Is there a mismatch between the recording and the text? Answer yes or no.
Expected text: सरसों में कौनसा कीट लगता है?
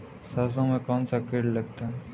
no